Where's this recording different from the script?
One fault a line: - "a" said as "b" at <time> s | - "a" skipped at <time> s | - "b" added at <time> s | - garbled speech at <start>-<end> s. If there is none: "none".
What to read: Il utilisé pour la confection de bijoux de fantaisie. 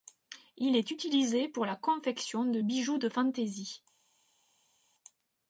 - "est" added at 0.8 s